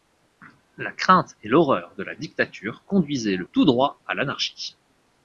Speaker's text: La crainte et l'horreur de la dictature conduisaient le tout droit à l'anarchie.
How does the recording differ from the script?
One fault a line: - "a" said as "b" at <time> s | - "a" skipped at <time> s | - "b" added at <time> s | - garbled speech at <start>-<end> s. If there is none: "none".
none